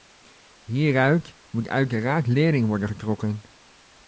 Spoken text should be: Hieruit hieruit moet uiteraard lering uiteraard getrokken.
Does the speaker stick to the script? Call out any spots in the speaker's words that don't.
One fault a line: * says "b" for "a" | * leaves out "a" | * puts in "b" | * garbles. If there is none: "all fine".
* leaves out "hieruit"
* says "worden" for "uiteraard"